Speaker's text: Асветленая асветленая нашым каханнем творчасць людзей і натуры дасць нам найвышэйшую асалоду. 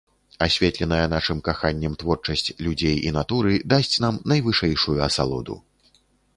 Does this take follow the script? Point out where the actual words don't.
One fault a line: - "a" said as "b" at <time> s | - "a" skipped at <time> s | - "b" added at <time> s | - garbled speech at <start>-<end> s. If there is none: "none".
- "асветленая" skipped at 1.0 s